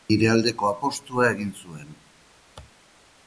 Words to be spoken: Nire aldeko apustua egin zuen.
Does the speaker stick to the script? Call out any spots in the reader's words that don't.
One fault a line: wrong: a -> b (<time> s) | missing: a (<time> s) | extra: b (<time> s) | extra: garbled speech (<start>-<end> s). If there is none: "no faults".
no faults